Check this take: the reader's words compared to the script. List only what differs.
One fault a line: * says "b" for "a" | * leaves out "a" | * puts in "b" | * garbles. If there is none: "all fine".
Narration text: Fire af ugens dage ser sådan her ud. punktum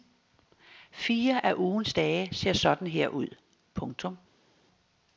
all fine